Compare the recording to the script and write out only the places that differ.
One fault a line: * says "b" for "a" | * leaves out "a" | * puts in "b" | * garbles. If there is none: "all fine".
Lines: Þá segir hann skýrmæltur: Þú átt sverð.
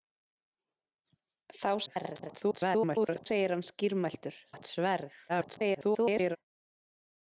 * garbles
* leaves out "Þú"
* garbles